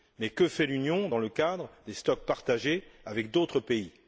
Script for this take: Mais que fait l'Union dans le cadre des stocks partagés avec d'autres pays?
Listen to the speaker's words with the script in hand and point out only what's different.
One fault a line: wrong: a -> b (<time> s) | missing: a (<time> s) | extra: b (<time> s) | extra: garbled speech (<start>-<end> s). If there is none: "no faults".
no faults